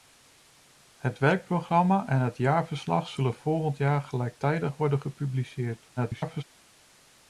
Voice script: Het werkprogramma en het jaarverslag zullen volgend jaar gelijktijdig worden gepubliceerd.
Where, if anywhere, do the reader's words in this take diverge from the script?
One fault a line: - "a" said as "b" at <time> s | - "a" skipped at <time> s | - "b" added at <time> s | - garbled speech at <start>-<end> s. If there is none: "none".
- garbled speech at 6.0-6.4 s